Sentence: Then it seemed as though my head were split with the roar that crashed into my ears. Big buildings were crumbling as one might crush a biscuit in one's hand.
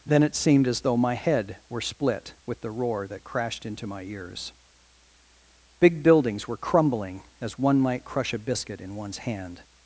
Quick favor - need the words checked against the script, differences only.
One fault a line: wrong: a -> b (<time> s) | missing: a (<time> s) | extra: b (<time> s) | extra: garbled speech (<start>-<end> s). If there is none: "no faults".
no faults